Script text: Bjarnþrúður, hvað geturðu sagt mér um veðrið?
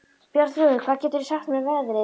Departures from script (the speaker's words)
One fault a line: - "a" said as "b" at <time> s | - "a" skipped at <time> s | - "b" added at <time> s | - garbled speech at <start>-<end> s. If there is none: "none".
none